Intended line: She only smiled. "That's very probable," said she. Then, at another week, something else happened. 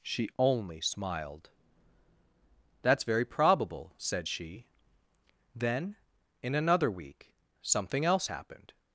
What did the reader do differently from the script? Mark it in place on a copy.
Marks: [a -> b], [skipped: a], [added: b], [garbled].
She only smiled. "That's very probable," said she. Then, [at -> in] another week, something else happened.